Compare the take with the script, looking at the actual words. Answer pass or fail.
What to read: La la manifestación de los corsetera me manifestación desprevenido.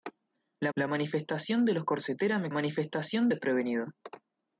pass